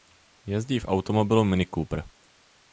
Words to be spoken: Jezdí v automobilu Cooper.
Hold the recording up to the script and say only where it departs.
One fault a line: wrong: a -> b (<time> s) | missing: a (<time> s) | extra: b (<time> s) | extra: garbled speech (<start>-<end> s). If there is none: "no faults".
extra: Mini (1.4 s)